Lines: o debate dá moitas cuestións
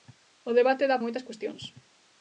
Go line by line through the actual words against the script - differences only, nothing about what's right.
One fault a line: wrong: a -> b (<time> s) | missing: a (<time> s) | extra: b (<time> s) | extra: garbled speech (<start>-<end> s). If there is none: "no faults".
no faults